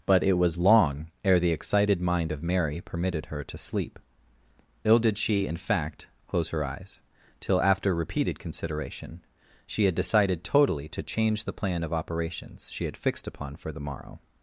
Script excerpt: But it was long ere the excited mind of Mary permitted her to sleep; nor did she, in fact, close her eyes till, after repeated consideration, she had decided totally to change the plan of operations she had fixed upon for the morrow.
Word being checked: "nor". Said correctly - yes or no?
no